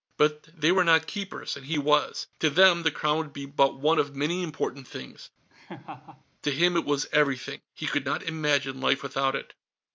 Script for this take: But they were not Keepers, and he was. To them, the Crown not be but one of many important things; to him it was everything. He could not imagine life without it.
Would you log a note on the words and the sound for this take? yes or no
yes